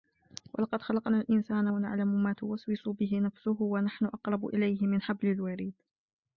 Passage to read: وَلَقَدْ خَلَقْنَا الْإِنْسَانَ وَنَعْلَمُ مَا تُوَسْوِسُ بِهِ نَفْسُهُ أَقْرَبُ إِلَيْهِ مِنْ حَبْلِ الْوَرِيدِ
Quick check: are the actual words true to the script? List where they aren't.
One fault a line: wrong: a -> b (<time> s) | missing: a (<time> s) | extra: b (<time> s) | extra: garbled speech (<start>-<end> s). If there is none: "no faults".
extra: وَنَحْنُ (3.6 s)